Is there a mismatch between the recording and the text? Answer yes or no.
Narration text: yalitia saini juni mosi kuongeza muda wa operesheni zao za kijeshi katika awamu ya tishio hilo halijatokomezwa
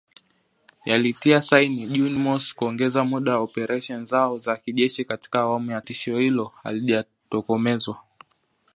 no